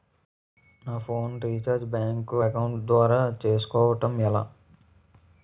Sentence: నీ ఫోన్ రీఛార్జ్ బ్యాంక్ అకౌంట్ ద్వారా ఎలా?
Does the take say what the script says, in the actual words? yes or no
no